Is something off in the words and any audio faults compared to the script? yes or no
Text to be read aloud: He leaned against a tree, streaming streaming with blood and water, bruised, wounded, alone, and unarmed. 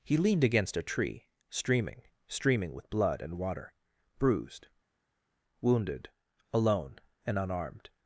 no